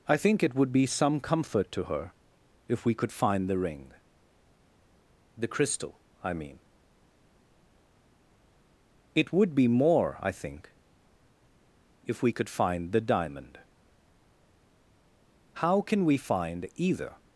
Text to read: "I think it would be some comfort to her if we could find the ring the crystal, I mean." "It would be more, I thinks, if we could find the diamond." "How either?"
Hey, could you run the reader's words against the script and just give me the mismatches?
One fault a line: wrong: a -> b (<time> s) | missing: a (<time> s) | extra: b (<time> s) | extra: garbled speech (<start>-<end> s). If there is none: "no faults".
wrong: thinks -> think (10.3 s)
extra: can we find (15.8 s)